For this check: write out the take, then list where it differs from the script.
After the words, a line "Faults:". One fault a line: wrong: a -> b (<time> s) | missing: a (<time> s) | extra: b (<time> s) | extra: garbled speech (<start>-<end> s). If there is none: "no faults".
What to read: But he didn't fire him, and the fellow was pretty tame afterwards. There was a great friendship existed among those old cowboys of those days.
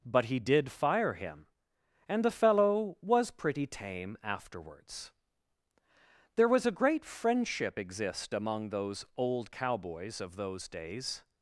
But he did fire him, and the fellow was pretty tame afterwards. There was a great friendship exist among those old cowboys of those days.
Faults:
wrong: didn't -> did (0.4 s)
wrong: existed -> exist (7.8 s)